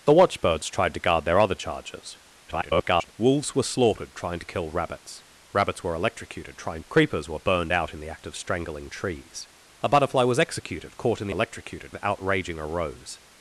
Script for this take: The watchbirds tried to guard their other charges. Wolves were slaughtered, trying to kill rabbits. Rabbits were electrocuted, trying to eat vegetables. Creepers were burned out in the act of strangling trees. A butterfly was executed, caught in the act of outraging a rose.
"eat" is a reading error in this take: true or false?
true